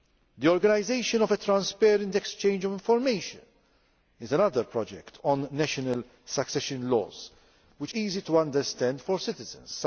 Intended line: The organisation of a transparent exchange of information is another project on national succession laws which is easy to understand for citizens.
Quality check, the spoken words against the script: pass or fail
fail